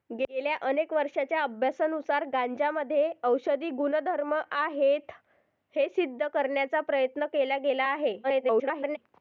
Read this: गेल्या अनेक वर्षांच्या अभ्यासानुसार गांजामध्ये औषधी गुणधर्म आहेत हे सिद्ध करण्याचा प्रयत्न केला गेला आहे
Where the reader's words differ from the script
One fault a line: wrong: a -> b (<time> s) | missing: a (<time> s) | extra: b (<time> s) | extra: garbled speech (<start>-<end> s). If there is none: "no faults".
extra: garbled speech (8.2-9.0 s)